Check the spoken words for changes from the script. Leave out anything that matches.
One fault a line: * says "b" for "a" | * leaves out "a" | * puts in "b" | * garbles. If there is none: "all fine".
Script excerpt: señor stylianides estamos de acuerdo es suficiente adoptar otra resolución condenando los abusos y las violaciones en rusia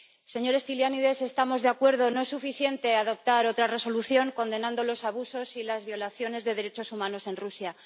* puts in "no"
* puts in "de derechos humanos"